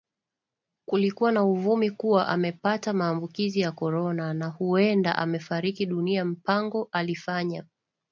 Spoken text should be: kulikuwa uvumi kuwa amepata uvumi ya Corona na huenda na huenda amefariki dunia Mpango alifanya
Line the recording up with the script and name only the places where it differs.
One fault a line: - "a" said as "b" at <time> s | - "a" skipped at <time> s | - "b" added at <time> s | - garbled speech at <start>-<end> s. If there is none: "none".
- "na" added at 1.3 s
- "uvumi" said as "maambukizi" at 2.9 s
- "na huenda" skipped at 5.2 s